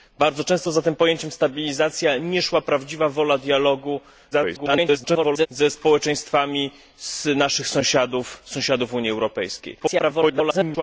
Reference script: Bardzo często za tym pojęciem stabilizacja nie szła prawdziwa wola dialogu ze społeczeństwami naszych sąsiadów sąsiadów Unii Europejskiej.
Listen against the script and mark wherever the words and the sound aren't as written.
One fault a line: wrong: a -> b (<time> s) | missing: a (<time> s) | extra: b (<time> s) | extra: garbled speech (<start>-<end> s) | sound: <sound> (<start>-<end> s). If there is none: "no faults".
extra: garbled speech (4.3-5.5 s)
extra: garbled speech (9.8-10.8 s)